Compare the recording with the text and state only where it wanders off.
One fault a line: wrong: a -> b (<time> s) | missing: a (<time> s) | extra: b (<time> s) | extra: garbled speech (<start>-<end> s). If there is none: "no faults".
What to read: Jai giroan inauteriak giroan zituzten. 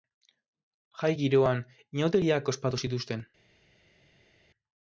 wrong: giroan -> ospatu (2.5 s)